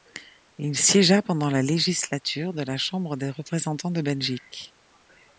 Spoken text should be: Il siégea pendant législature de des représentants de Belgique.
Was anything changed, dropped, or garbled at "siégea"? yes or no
no